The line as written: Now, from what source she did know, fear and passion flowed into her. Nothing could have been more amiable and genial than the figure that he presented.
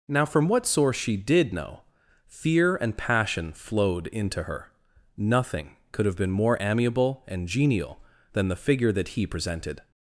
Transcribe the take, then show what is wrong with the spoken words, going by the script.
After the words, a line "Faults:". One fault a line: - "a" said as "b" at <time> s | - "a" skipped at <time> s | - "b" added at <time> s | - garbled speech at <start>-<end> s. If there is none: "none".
Now, from what source she did know, fear and passion flowed into her. Nothing could have been more amiable and genial than the figure that he presented.
Faults:
none